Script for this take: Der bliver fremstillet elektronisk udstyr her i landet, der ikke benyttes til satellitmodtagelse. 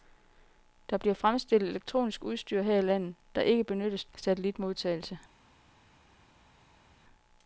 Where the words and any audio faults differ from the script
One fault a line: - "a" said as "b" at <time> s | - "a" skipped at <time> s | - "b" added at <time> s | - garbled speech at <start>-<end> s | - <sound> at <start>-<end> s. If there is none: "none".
- "til" skipped at 4.0 s